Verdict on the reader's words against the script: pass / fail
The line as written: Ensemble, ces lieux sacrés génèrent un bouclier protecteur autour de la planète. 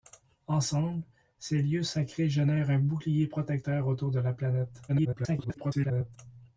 fail